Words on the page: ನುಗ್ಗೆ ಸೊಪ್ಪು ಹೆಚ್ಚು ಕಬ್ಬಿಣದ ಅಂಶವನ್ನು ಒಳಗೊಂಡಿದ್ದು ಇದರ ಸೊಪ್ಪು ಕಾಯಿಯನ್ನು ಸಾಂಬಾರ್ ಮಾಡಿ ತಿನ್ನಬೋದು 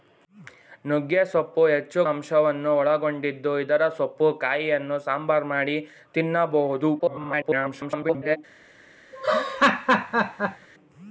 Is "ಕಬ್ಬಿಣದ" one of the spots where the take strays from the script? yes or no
yes